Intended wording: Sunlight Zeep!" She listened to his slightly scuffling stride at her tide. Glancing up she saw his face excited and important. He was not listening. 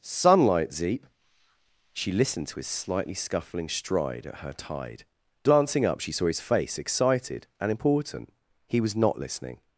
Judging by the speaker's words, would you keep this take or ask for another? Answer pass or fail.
pass